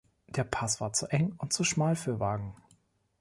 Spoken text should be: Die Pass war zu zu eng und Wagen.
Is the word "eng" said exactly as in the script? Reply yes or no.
no